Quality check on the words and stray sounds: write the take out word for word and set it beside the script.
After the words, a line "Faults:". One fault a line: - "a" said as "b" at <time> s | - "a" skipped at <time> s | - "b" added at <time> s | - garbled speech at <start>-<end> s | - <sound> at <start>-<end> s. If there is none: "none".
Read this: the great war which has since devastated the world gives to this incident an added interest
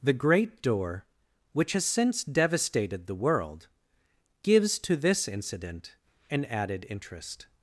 the great door which has since devastated the world gives to this incident an added interest
Faults:
- "war" said as "door" at 0.6 s